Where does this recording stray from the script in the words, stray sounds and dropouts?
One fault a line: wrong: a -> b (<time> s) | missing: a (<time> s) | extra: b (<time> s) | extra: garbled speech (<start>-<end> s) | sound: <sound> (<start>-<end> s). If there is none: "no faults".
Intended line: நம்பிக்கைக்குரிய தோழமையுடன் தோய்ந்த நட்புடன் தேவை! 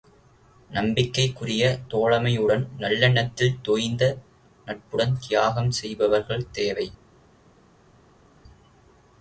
extra: நல்லெண்ணத்தில் (2.8 s)
extra: தியாகம் செய்பவர்கள் (5.2 s)